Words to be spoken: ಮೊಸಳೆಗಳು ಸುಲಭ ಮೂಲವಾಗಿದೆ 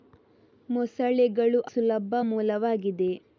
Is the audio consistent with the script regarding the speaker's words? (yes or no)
yes